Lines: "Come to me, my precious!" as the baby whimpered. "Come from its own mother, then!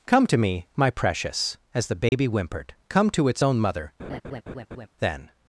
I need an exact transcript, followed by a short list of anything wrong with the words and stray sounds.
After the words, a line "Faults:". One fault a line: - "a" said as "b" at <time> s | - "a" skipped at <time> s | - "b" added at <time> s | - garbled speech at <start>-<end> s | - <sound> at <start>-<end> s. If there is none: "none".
"Come to me, my precious!" as the baby whimpered. "Come to its own mother, then!
Faults:
- dropout at 2.1-2.1 s
- "from" said as "to" at 3.1 s
- laugh at 4.0-4.9 s